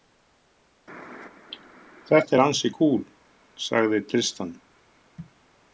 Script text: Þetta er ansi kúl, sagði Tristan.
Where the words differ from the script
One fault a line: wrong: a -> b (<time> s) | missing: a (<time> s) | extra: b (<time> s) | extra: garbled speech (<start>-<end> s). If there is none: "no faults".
no faults